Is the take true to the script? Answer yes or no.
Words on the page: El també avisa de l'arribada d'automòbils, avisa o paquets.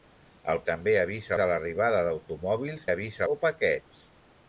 yes